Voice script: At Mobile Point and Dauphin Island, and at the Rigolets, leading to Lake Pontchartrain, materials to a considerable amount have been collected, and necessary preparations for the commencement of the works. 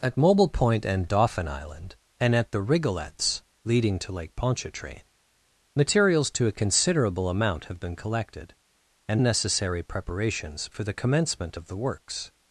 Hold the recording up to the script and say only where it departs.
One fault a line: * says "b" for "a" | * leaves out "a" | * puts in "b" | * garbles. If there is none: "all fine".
all fine